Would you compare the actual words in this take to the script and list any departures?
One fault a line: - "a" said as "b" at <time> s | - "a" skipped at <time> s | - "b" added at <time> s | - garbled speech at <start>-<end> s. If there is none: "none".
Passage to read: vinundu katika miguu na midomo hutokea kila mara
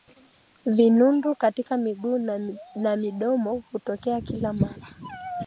none